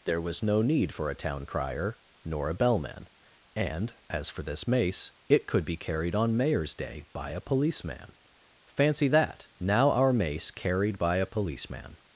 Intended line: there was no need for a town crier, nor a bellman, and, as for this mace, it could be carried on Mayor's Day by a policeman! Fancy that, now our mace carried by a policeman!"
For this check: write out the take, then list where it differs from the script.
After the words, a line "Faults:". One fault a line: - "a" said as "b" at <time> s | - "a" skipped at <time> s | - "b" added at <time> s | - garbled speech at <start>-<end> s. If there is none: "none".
there was no need for a town crier, nor a bellman, and, as for this mace, it could be carried on Mayor's Day by a policeman! Fancy that, now our mace carried by a policeman!"
Faults:
none